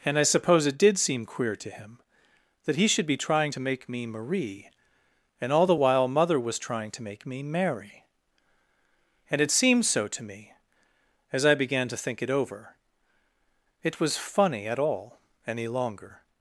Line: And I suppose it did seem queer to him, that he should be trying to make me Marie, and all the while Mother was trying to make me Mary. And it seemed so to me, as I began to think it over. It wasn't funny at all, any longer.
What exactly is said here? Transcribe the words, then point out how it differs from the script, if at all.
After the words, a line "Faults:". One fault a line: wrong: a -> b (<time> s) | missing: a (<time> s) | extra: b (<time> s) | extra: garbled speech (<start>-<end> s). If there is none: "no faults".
And I suppose it did seem queer to him, that he should be trying to make me Marie, and all the while Mother was trying to make me Mary. And it seemed so to me, as I began to think it over. It was funny at all, any longer.
Faults:
wrong: wasn't -> was (14.0 s)